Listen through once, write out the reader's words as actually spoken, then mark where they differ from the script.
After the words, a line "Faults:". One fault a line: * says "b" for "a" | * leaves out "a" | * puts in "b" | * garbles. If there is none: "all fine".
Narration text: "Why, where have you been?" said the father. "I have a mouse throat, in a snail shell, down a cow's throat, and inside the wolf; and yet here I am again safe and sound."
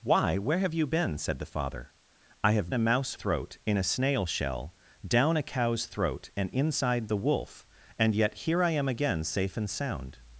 "Why, where have you been?" said the father. "I have a mouse throat, in a snail shell, down a cow's throat, and inside the wolf; and yet here I am again safe and sound."
Faults:
all fine